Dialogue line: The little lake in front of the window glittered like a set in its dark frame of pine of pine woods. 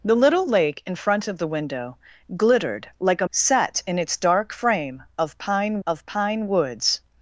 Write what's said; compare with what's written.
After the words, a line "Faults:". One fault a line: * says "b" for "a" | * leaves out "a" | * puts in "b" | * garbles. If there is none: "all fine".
The little lake in front of the window glittered like a set in its dark frame of pine of pine woods.
Faults:
all fine